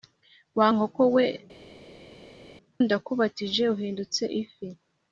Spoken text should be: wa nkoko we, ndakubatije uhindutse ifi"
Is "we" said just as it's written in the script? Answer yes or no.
yes